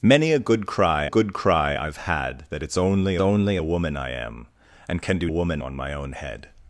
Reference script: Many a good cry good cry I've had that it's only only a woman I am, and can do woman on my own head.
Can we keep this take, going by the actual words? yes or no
yes